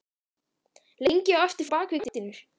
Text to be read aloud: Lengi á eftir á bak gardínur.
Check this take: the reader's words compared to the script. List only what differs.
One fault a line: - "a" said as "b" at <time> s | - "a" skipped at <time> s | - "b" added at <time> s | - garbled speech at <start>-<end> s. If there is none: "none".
none